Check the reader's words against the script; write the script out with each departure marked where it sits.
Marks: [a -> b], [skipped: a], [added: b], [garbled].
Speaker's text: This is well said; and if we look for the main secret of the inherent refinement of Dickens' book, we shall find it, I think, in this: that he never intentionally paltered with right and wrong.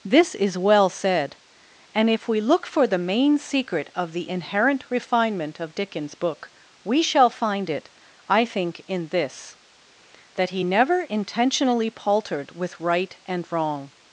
This is well said; and if we look for the main secret of the inherent refinement of Dickens' book, we shall find it, I think, in this: that he never intentionally paltered with right and wrong.